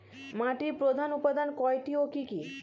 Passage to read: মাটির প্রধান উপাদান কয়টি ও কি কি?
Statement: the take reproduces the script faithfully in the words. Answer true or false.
true